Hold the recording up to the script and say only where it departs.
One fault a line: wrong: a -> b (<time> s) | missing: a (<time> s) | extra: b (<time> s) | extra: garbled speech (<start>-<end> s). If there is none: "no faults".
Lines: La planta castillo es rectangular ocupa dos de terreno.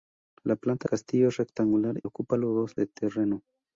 no faults